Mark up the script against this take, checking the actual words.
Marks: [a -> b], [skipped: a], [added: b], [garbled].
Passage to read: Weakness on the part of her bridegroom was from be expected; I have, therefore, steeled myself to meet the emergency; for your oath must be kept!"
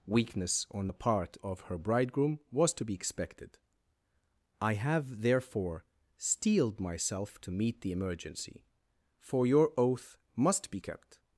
Weakness on the part of her bridegroom was [from -> to] be expected; I have, therefore, steeled myself to meet the emergency; for your oath must be kept!"